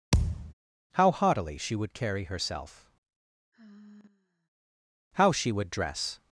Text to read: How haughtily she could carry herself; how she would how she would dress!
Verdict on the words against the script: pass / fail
fail